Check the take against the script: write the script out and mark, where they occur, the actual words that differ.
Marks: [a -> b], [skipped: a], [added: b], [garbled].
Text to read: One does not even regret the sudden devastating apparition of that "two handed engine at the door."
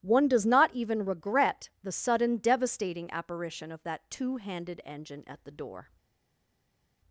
One does not even regret the sudden devastating apparition of that "two handed engine at the door."